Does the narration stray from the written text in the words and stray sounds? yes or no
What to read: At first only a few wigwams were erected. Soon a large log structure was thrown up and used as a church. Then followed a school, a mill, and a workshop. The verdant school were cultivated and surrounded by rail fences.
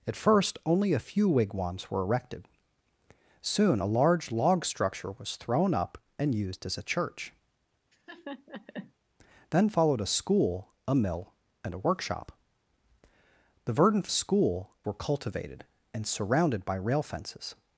yes